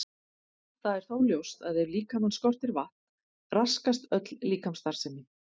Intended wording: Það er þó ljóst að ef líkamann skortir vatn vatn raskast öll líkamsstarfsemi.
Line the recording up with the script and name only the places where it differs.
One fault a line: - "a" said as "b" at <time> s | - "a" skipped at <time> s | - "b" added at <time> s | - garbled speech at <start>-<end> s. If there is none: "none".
- "vatn" skipped at 3.6 s